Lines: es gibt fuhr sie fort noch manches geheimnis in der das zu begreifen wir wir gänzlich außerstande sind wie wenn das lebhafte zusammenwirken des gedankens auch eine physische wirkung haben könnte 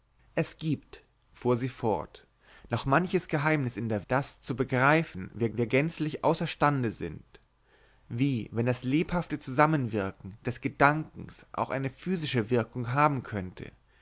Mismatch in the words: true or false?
false